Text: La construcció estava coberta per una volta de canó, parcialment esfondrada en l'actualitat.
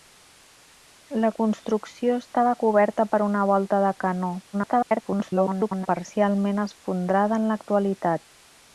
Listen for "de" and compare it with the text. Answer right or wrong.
right